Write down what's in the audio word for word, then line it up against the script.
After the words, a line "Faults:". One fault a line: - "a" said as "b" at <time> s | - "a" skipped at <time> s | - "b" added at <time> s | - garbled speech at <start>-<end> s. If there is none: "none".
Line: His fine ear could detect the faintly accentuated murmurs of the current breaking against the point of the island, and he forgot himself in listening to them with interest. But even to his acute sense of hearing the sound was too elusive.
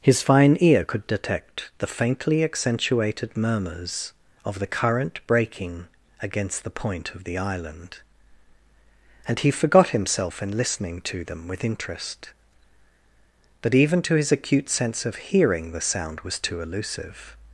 His fine ear could detect the faintly accentuated murmurs of the current breaking against the point of the island, and he forgot himself in listening to them with interest. But even to his acute sense of hearing the sound was too elusive.
Faults:
none